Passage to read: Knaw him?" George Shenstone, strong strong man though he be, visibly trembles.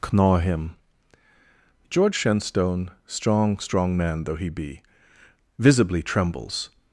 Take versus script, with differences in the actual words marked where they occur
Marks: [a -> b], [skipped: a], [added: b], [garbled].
Knaw him?" George Shenstone, strong strong man though he be, visibly trembles.